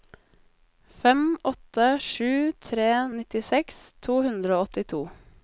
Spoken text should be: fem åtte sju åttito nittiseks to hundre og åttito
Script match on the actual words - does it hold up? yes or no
no